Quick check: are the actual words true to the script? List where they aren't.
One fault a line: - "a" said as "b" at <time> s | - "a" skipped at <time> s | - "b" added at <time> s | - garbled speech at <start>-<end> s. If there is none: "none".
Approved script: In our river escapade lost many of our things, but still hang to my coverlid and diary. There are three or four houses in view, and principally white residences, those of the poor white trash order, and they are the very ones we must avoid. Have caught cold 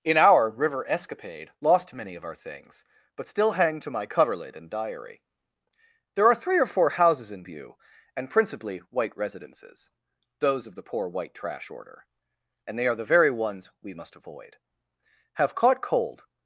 none